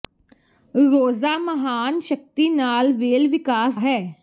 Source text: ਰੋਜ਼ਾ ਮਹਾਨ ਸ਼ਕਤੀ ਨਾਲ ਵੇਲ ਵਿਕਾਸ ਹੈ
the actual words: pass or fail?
pass